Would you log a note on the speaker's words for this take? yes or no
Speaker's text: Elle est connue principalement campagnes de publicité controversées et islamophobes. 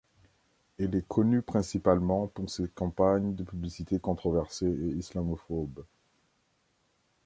yes